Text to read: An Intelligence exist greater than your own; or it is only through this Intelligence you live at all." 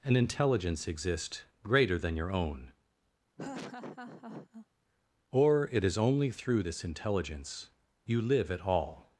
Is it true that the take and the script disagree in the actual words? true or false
false